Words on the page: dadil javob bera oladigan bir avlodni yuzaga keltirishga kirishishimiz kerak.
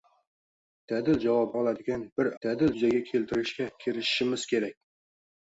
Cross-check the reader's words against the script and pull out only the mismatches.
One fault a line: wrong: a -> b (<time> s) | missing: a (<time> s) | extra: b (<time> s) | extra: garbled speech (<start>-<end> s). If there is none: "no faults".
missing: bera (1.5 s)
wrong: avlodni -> dadil (2.4 s)